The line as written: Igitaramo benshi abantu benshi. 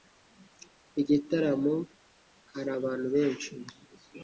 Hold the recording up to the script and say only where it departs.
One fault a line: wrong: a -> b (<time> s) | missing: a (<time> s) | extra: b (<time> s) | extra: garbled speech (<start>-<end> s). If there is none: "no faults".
wrong: benshi -> hari (2.5 s)